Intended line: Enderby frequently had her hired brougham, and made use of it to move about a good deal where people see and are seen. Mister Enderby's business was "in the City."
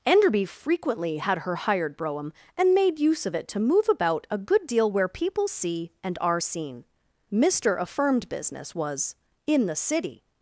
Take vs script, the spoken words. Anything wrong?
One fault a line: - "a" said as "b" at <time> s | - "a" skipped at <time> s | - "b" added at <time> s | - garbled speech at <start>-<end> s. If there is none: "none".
- "Enderby's" said as "Affirmed" at 7.8 s